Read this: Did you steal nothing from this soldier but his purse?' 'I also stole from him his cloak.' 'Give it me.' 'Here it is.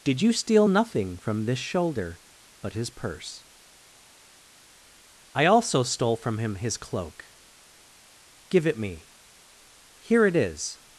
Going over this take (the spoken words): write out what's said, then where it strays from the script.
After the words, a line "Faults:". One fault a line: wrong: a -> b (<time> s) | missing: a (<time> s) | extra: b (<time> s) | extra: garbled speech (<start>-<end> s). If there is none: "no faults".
Did you steal nothing from this shoulder but his purse?' 'I also stole from him his cloak.' 'Give it me.' 'Here it is.
Faults:
wrong: soldier -> shoulder (1.6 s)